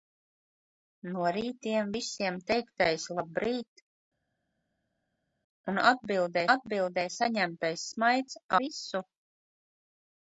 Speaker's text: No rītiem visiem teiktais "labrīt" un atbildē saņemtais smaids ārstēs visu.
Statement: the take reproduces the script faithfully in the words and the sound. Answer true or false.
false